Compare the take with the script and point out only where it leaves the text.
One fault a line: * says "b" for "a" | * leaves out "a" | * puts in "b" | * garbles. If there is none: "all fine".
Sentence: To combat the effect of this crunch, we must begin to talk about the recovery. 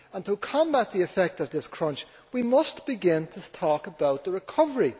all fine